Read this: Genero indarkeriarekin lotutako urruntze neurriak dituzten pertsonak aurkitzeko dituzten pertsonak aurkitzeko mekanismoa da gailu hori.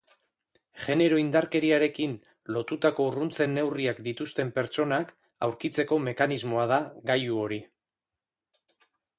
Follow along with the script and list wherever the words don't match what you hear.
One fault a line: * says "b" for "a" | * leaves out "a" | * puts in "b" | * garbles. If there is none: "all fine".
* leaves out "dituzten pertsonak aurkitzeko"